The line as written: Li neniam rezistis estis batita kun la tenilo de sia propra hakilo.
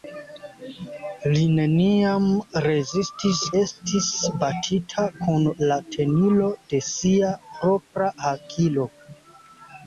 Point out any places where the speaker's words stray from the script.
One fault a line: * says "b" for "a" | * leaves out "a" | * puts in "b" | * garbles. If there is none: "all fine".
all fine